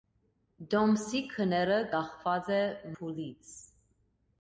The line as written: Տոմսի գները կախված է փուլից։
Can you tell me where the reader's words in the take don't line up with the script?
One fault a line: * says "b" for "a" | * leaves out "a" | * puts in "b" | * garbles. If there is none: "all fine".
all fine